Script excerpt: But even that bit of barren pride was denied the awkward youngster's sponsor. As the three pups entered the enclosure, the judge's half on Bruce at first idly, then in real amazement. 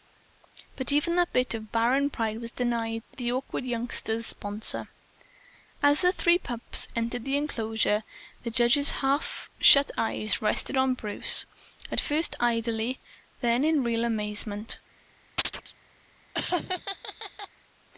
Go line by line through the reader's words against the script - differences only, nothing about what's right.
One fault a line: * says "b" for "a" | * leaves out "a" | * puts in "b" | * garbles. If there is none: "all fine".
* puts in "shut eyes rested"